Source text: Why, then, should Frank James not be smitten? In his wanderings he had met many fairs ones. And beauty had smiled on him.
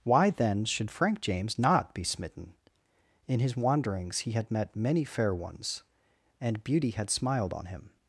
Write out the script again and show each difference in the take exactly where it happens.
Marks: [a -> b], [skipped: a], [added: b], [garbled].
Why, then, should Frank James not be smitten? In his wanderings he had met many [fairs -> fair] ones. And beauty had smiled on him.